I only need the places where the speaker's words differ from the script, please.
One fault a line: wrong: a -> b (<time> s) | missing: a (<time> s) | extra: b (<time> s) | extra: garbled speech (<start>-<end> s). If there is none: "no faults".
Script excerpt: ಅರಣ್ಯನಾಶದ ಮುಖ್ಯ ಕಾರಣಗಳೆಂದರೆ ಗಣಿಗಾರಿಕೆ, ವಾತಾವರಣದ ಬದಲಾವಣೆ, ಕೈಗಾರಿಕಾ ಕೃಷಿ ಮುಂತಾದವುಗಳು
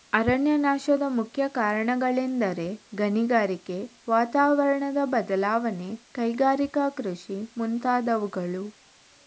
no faults